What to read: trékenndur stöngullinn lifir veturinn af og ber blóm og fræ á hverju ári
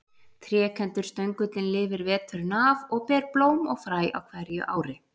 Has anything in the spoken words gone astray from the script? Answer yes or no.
no